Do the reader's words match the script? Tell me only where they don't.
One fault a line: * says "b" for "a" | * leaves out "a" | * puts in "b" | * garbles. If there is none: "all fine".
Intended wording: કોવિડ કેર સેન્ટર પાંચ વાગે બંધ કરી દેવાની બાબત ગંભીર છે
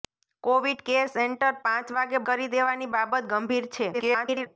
* leaves out "બંધ"
* garbles